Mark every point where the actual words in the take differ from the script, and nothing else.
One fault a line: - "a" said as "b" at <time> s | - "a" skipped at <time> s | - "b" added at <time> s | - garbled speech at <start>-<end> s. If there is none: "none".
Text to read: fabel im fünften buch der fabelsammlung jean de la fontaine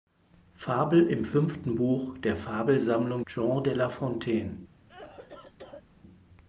none